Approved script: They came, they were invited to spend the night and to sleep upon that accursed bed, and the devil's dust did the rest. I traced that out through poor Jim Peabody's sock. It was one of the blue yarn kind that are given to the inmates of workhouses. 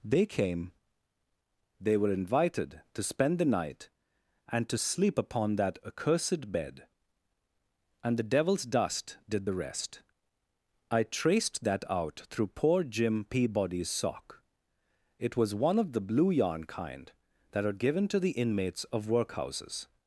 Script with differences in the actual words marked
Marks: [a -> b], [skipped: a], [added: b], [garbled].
They came, they were invited to spend the night and to sleep upon that accursed bed, and the devil's dust did the rest. I traced that out through poor Jim Peabody's sock. It was one of the blue yarn kind that are given to the inmates of workhouses.